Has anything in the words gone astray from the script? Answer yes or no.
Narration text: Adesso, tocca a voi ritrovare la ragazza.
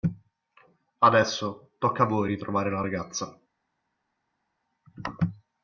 no